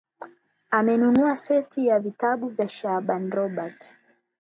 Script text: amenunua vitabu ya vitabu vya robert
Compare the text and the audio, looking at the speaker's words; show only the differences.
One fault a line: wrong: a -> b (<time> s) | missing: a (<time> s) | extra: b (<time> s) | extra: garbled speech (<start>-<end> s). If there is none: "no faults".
wrong: vitabu -> seti (1.4 s)
extra: shaaban (2.7 s)